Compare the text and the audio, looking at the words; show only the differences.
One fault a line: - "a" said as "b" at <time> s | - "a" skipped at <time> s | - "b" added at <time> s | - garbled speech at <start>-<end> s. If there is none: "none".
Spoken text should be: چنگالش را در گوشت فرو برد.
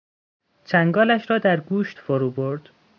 none